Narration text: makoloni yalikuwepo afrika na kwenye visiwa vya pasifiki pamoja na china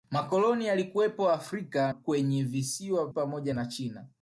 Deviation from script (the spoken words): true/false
true